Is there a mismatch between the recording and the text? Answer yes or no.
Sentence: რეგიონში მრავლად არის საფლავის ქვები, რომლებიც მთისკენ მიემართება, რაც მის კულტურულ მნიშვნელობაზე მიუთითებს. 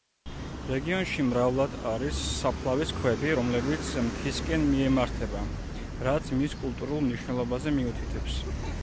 no